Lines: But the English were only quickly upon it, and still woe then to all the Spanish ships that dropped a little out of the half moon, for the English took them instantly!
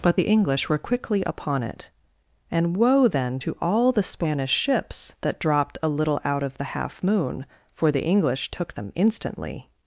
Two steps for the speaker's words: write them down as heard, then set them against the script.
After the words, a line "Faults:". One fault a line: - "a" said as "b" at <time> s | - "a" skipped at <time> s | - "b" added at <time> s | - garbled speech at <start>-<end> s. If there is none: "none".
But the English were quickly upon it, and woe then to all the Spanish ships that dropped a little out of the half moon, for the English took them instantly!
Faults:
- "only" skipped at 0.8 s
- "still" skipped at 2.8 s